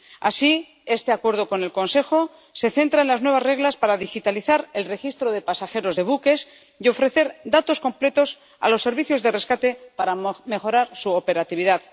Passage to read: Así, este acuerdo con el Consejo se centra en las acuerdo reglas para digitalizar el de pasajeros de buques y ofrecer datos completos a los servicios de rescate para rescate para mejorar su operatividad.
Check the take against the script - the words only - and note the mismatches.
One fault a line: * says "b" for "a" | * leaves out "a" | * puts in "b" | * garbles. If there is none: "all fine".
* says "nuevas" for "acuerdo"
* puts in "registro"
* leaves out "rescate para"